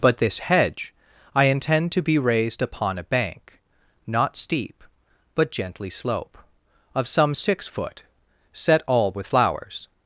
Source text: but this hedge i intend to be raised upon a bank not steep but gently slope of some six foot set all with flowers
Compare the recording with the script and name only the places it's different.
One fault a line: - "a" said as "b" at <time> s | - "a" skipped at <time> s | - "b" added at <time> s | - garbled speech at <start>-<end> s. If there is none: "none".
none